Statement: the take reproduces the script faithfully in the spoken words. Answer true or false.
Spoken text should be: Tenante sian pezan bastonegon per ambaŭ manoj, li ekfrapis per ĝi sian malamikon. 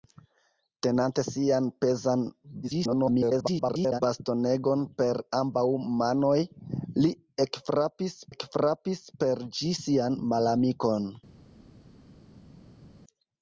false